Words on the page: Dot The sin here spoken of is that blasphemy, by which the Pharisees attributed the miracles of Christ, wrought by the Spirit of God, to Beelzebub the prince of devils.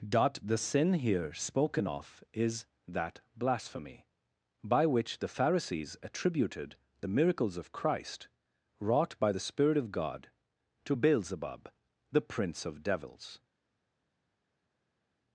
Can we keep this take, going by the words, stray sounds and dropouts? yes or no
yes